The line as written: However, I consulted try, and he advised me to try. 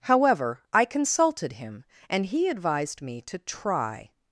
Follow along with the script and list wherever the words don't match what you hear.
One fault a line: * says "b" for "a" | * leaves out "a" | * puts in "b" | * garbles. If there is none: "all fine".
* says "him" for "try"